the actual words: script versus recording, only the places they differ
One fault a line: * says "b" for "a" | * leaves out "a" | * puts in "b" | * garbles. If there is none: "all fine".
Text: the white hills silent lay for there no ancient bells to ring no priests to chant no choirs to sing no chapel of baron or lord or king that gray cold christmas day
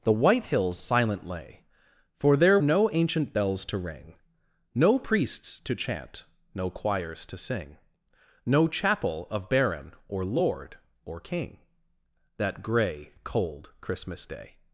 all fine